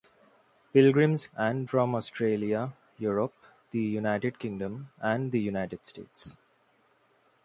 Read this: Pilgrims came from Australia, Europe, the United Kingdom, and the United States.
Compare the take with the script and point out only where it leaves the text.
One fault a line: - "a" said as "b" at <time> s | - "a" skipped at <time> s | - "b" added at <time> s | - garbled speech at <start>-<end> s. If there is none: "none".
- "came" said as "and" at 1.4 s